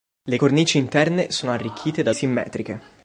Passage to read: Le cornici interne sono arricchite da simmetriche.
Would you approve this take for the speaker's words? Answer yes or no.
yes